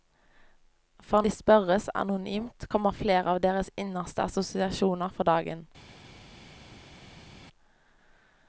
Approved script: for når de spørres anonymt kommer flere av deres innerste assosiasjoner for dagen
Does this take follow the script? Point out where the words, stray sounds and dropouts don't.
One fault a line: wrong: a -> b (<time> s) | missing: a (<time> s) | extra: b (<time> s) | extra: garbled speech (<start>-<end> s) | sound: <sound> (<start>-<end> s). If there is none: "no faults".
missing: når (1.2 s)